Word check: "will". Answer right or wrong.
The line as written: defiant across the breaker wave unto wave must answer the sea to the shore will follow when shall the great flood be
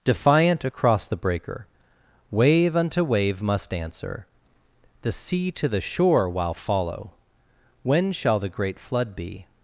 wrong